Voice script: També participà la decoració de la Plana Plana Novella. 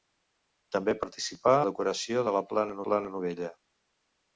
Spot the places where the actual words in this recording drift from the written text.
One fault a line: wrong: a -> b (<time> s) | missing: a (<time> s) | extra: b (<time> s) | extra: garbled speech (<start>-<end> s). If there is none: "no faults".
no faults